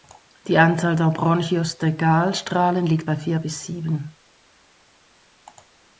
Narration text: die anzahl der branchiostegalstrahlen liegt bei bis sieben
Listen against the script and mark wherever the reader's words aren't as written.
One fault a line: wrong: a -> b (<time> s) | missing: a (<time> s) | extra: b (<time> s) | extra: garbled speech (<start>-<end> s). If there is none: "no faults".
extra: vier (3.2 s)